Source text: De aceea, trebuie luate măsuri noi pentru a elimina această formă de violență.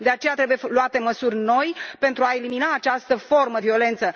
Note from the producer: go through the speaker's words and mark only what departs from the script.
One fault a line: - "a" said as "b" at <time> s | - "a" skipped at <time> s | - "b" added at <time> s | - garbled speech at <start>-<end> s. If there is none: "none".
- "de" skipped at 3.6 s